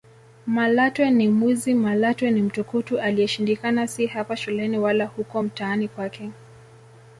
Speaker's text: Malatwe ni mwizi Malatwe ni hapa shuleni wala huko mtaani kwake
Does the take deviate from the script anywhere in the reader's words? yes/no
yes